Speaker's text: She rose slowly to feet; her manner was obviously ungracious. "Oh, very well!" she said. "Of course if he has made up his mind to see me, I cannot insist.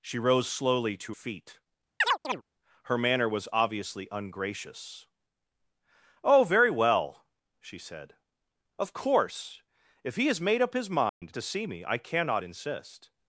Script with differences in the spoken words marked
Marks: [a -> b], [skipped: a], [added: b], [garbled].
She rose slowly to feet; her manner was obviously ungracious. "Oh, very well!" she said. "Of course if he has made up his mind to see me, I cannot insist.